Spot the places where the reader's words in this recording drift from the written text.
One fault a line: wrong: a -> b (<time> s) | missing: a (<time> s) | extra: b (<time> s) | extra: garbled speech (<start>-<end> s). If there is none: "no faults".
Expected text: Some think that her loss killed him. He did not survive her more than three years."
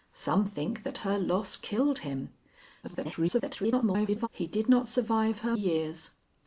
extra: garbled speech (2.8-4.3 s)
missing: more than three (5.6 s)